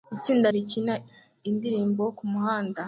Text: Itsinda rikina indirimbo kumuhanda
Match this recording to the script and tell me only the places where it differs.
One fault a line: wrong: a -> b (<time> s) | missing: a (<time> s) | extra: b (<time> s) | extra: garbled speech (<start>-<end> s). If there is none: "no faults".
no faults